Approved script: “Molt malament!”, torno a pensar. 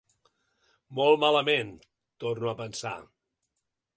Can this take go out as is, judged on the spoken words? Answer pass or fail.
pass